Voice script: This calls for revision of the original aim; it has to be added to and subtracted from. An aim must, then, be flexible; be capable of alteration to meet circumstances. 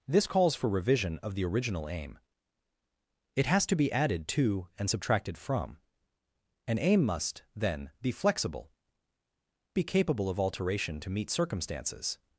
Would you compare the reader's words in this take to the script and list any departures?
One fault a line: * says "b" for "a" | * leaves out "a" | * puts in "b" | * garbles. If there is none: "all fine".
all fine